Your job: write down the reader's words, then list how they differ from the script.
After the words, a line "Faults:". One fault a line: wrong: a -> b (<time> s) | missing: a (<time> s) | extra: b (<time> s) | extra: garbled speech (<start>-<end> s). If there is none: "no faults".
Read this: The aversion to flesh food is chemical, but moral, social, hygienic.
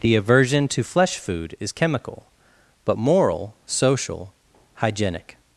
The aversion to flesh food is chemical, but moral, social, hygienic.
Faults:
no faults